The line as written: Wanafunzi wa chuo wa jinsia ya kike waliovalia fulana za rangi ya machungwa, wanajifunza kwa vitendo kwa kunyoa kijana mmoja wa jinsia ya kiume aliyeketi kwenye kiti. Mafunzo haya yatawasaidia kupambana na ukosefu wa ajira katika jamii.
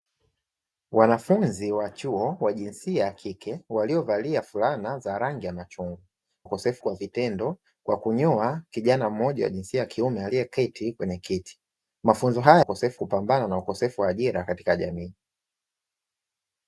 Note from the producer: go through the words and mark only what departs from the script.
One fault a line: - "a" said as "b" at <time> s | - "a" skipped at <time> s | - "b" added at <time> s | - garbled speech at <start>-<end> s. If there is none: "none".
- "wanajifunza" said as "ukosefu" at 6.4 s
- "yatawasaidia" said as "ukosefu" at 12.6 s